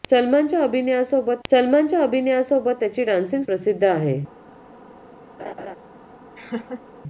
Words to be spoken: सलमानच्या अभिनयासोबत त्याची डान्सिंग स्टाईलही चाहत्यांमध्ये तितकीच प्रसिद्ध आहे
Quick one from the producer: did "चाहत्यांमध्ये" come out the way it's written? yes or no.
no